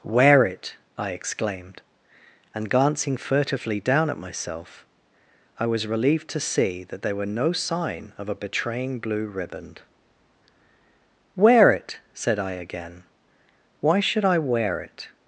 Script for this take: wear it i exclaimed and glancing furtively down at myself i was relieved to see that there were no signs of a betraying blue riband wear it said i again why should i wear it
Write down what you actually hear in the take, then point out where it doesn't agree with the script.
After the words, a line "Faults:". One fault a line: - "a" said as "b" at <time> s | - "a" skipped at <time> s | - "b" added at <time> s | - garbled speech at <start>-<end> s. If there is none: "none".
wear it i exclaimed and glancing furtively down at myself i was relieved to see that there were no sign of a betraying blue riband wear it said i again why should i wear it
Faults:
- "signs" said as "sign" at 7.5 s